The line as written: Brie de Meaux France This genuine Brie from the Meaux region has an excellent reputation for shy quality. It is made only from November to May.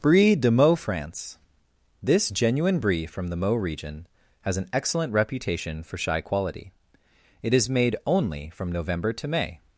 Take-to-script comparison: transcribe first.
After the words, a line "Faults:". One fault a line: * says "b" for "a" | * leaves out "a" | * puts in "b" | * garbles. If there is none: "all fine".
Brie de Meaux France This genuine Brie from the Meaux region has an excellent reputation for shy quality. It is made only from November to May.
Faults:
all fine